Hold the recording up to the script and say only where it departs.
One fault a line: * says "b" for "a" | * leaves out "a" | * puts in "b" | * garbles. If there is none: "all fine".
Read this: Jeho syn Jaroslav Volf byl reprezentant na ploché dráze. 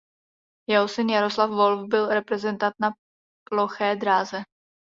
all fine